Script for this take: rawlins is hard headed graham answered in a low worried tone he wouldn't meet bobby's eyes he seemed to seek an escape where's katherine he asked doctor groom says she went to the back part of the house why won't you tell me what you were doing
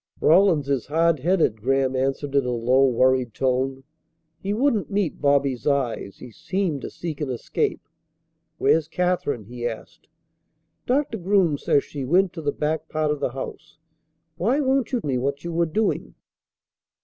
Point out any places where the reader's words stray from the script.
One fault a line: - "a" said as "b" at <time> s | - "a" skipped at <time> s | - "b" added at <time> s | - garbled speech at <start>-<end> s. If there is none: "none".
- "tell" skipped at 15.0 s